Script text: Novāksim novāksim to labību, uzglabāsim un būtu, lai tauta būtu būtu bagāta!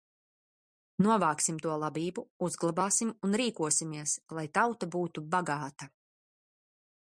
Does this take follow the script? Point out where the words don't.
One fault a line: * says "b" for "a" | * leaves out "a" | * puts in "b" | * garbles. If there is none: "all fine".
* leaves out "novāksim"
* says "rīkosimies" for "būtu"
* leaves out "būtu"